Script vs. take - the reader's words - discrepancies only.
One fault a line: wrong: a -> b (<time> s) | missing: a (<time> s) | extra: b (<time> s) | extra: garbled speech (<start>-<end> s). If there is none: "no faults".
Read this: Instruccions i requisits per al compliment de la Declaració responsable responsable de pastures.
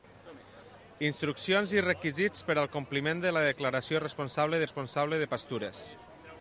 no faults